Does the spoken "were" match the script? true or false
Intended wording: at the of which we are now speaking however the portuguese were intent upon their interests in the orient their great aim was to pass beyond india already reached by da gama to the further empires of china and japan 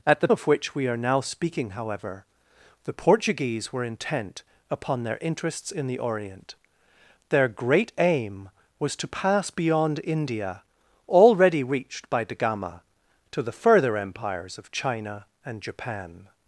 true